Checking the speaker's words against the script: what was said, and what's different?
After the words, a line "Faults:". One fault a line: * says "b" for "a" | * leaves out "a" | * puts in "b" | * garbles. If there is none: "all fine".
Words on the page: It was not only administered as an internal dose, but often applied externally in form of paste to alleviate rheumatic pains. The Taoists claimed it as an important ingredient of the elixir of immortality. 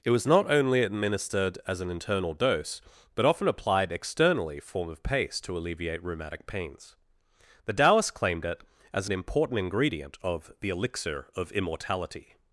It was not only administered as an internal dose, but often applied externally form of paste to alleviate rheumatic pains. The Taoists claimed it as an important ingredient of the elixir of immortality.
Faults:
* leaves out "in"